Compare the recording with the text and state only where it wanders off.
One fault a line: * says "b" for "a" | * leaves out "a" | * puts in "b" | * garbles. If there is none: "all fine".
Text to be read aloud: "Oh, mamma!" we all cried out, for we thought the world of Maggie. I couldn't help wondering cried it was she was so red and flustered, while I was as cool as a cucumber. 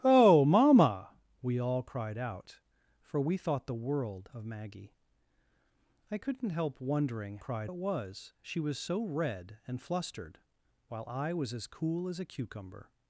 all fine